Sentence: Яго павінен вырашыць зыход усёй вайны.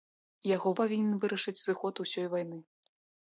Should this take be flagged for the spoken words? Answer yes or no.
no